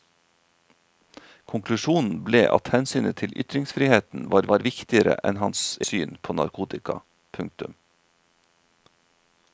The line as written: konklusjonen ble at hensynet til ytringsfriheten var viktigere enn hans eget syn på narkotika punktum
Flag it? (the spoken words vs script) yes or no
yes